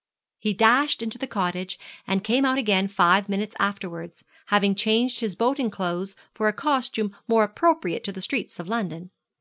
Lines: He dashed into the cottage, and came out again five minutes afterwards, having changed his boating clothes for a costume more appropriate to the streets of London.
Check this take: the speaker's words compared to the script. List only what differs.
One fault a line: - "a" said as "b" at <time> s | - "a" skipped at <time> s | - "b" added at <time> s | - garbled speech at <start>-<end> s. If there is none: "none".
none